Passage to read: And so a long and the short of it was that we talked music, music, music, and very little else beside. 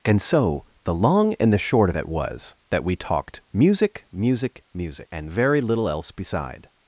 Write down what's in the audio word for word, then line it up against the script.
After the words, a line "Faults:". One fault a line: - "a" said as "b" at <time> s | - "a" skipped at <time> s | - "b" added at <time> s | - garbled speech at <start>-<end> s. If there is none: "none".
And so the long and the short of it was that we talked music, music, music, and very little else beside.
Faults:
- "a" said as "the" at 0.8 s